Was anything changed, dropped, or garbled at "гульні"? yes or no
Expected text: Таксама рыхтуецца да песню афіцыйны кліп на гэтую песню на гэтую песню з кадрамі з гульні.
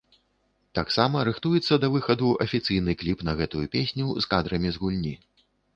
no